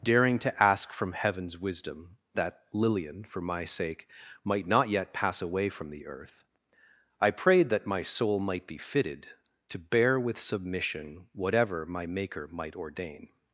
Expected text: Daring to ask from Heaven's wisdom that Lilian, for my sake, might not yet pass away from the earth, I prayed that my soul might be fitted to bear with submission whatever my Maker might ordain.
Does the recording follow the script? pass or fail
pass